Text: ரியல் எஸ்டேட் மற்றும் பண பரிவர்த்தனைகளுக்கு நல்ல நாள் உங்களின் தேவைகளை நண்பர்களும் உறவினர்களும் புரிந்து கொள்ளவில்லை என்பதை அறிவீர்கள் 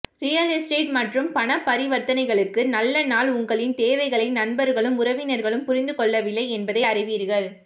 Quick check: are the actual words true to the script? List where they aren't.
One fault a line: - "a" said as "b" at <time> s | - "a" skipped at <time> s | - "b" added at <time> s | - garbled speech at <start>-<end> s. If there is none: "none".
none